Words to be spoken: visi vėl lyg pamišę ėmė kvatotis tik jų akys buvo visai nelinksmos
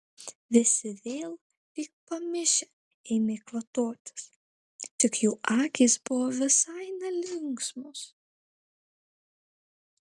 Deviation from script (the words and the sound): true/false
false